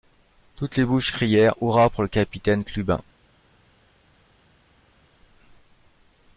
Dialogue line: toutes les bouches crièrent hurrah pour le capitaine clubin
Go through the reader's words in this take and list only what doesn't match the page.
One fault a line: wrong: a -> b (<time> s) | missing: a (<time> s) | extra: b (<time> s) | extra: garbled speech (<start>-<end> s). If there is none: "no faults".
no faults